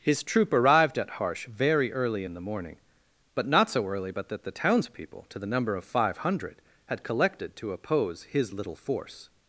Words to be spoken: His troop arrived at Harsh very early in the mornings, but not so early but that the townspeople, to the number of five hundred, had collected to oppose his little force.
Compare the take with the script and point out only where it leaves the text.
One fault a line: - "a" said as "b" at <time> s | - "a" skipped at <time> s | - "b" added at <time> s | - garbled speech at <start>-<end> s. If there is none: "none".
- "mornings" said as "morning" at 2.4 s